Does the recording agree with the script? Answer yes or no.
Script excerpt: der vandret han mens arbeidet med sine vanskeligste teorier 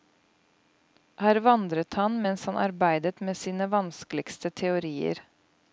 no